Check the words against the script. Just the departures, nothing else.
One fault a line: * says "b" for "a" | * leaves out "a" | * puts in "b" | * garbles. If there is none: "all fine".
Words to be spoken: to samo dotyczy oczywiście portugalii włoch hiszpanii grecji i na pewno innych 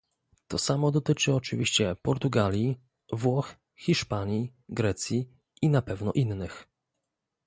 all fine